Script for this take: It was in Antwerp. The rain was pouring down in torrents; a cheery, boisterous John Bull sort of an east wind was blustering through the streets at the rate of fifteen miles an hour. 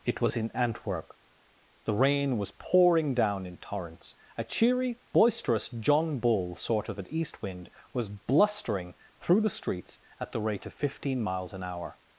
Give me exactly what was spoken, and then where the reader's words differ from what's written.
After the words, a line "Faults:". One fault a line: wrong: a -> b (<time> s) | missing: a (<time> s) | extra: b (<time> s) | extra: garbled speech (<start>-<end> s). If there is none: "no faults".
It was in Antwerp. The rain was pouring down in torrents; a cheery, boisterous John Bull sort of an east wind was blustering through the streets at the rate of fifteen miles an hour.
Faults:
no faults